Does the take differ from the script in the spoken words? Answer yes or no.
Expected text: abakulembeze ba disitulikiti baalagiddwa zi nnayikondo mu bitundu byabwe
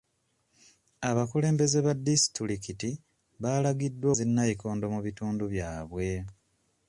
no